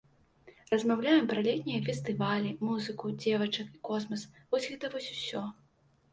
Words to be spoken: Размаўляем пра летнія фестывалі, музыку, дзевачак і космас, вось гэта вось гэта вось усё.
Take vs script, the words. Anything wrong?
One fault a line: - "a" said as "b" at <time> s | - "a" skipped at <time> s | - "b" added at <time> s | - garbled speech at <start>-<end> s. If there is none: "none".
- "гэта вось" skipped at 5.1 s